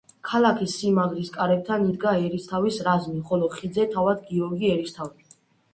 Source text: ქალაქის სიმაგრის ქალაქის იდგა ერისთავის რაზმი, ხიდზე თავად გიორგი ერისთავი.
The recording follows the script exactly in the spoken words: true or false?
false